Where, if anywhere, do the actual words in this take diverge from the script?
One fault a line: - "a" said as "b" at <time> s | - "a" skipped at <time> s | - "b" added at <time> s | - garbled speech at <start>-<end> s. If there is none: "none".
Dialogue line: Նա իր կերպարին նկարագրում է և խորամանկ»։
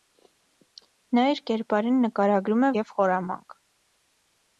none